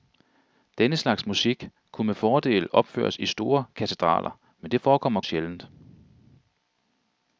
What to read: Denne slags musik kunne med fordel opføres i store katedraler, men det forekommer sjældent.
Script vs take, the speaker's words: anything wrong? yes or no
no